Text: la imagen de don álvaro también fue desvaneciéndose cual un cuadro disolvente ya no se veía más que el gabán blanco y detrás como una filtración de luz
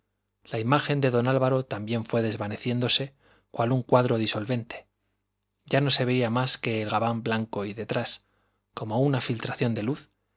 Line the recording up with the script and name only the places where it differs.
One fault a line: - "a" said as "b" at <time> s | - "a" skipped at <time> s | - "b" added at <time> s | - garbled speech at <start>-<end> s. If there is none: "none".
none